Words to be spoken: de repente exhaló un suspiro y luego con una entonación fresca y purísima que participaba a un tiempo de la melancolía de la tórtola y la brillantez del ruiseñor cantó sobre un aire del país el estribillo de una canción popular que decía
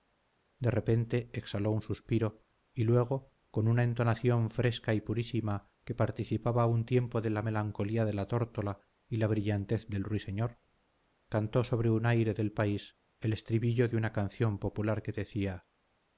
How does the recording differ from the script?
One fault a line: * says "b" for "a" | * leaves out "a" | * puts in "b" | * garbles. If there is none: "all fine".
all fine